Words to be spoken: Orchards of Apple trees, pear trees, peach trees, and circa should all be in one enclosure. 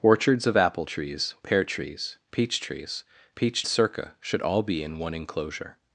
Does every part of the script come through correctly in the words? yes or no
no